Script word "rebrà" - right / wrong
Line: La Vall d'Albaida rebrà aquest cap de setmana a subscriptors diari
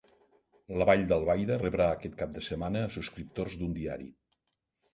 right